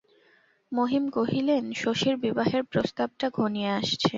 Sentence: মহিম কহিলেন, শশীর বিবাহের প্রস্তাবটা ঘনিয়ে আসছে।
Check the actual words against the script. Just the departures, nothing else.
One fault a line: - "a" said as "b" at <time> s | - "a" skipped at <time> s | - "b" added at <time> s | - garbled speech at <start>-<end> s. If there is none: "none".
none